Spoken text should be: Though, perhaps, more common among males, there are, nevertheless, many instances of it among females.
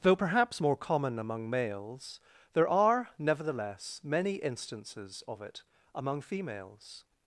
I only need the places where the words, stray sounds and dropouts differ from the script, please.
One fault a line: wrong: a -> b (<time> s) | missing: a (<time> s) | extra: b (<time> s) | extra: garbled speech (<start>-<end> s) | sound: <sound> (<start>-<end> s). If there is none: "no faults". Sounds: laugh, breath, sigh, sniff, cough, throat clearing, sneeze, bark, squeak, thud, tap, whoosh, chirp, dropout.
no faults